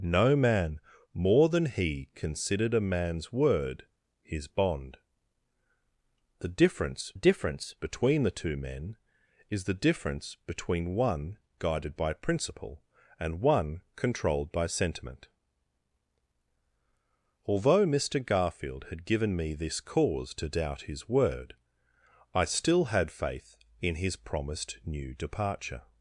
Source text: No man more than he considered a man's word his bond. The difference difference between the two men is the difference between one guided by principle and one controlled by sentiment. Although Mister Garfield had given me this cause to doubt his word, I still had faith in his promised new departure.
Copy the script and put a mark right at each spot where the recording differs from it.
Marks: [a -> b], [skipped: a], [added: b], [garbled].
No man more than he considered a man's word his bond. The difference difference between the two men is the difference between one guided by principle and one controlled by sentiment. Although Mister Garfield had given me this cause to doubt his word, I still had faith in his promised new departure.